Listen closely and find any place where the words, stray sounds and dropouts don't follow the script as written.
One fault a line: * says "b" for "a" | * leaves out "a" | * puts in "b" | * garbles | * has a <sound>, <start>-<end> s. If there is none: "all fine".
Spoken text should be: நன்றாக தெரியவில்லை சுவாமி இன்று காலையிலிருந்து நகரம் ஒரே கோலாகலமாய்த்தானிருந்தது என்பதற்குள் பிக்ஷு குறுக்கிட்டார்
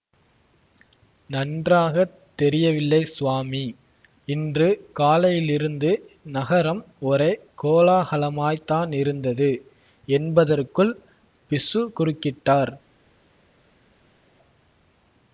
all fine